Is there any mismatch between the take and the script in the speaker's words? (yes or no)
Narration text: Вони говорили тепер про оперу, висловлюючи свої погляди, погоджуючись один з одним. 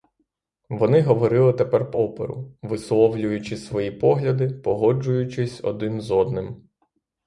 yes